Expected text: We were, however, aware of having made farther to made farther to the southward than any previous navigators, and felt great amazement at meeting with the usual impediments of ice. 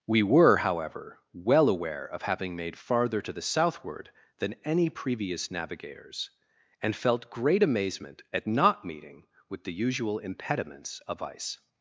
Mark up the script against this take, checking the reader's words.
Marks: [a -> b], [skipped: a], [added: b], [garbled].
We were, however, [added: well] aware of having made farther to [skipped: made farther to] the southward than any previous navigators, and felt great amazement at [added: not] meeting with the usual impediments of ice.